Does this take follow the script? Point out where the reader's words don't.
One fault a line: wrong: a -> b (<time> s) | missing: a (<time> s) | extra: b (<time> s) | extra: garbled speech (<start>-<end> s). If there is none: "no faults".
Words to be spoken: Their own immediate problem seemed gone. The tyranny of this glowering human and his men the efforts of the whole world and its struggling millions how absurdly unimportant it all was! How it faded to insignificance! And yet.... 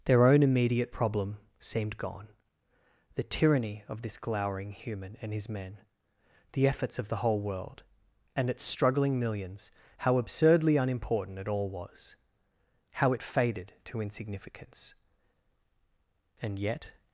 no faults